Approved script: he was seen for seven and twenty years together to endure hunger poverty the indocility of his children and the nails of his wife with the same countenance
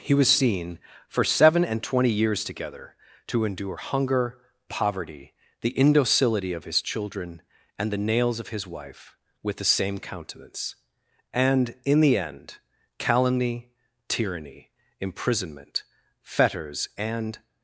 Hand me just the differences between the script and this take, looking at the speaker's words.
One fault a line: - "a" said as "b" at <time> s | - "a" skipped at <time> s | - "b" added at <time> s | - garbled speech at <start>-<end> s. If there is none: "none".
- "and in the end calumny tyranny imprisonment fetters and" added at 11.3 s